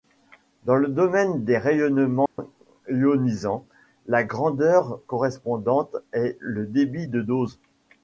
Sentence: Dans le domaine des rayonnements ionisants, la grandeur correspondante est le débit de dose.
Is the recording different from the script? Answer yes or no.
no